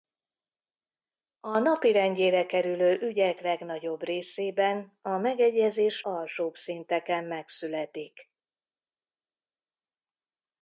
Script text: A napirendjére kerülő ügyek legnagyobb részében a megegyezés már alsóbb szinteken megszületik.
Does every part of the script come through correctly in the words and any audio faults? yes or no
no